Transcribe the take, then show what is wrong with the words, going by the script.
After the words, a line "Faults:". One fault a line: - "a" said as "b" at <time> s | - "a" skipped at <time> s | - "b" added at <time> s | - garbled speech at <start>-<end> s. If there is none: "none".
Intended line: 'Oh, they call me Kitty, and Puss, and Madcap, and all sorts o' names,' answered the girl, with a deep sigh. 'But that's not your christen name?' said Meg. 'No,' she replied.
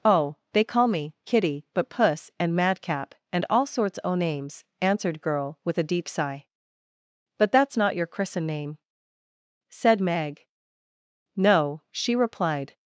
'Oh, they call me Kitty, but Puss, and Madcap, and all sorts o' names,' answered girl, with a deep sigh. 'But that's not your christen name?' said Meg. 'No,' she replied.
Faults:
- "and" said as "but" at 1.7 s
- "the" skipped at 5.2 s